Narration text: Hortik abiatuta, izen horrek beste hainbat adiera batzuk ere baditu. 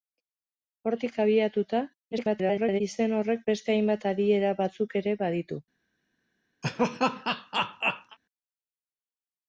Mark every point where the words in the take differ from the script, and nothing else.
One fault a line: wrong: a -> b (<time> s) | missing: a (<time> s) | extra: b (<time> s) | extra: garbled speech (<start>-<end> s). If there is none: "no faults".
extra: garbled speech (2.1-2.8 s)